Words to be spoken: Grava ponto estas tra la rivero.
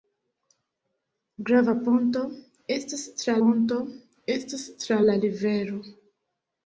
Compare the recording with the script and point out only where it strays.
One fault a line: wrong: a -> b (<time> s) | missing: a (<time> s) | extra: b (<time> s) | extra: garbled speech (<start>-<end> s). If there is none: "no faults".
extra: ponto estas tra (3.4 s)